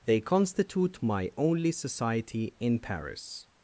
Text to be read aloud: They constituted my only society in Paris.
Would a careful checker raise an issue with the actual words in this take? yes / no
yes